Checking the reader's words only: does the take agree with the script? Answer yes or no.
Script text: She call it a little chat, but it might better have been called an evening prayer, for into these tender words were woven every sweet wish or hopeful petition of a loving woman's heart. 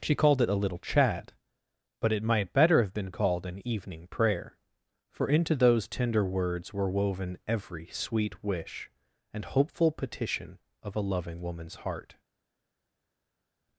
no